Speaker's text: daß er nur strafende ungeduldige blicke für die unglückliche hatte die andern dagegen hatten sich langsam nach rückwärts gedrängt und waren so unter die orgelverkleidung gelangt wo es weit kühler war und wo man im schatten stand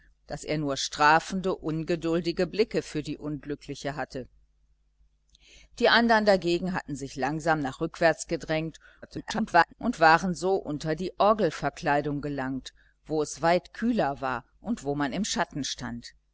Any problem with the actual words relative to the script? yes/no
yes